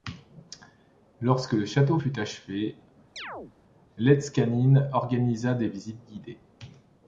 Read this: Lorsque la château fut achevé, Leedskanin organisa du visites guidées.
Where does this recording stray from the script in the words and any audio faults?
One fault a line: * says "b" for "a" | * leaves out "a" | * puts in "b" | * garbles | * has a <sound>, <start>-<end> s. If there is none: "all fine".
* says "le" for "la"
* has a chirp, 3.2-3.5 s
* says "des" for "du"